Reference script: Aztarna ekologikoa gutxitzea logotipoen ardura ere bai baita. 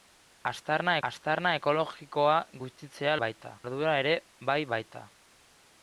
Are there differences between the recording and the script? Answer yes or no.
yes